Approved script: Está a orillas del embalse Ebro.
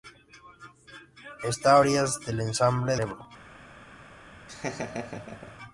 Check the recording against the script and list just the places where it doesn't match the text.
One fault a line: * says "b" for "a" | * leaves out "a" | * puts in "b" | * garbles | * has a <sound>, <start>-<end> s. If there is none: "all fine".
* has a laugh, 4.5-5.6 s